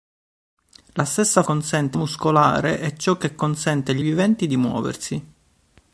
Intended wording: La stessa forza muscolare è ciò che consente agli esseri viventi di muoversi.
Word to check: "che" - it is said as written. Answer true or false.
true